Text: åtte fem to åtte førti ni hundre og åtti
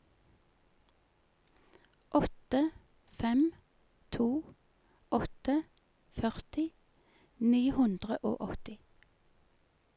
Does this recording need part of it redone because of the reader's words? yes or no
no